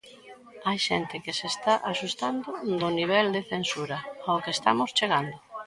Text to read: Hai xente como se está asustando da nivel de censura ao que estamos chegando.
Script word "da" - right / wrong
wrong